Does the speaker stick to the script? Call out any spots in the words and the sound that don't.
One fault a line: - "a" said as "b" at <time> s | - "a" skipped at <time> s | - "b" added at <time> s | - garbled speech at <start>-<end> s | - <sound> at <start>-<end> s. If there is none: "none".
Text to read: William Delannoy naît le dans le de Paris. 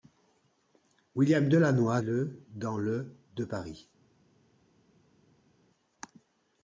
- "naît" skipped at 2.0 s